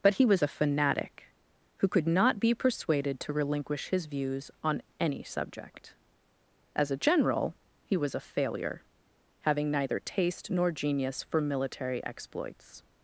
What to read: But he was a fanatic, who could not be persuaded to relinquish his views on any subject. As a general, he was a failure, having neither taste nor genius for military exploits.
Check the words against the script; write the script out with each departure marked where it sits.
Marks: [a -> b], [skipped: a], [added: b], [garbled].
But he was a fanatic, who could not be persuaded to relinquish his views on any subject. As a general, he was a failure, having neither taste nor genius for military exploits.